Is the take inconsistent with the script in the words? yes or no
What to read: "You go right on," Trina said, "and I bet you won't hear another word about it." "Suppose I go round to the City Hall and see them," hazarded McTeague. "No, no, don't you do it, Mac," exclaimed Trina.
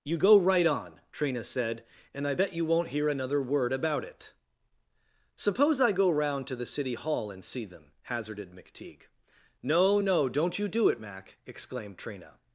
no